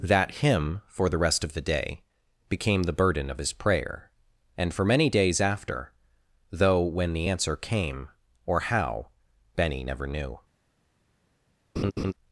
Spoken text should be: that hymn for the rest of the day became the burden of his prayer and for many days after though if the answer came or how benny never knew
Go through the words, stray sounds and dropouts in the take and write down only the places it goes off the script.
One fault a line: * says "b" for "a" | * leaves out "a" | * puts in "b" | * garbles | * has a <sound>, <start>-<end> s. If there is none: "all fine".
* says "when" for "if"
* has a laugh, 11.8-12.1 s